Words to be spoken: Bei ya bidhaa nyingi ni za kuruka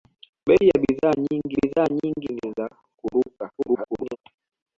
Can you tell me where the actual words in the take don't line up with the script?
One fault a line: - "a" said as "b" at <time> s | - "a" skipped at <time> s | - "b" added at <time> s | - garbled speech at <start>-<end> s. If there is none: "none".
- "bidhaa nyingi" added at 1.6 s
- garbled speech at 3.6-4.2 s